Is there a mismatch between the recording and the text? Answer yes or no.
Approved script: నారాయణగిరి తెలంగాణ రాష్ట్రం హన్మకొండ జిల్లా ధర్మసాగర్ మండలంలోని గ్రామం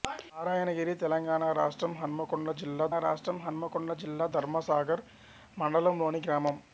yes